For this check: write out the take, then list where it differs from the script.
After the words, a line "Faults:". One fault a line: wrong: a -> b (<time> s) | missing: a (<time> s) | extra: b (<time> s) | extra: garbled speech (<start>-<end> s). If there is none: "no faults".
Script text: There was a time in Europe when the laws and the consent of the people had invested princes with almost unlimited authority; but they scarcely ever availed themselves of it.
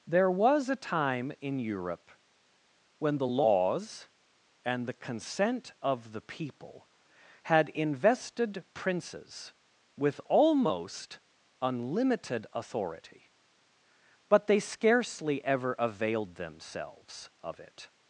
There was a time in Europe when the laws and the consent of the people had invested princes with almost unlimited authority; but they scarcely ever availed themselves of it.
Faults:
no faults